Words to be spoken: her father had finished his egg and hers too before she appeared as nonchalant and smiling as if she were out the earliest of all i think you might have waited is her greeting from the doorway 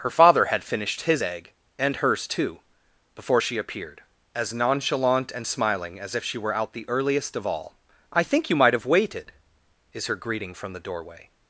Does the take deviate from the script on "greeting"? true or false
false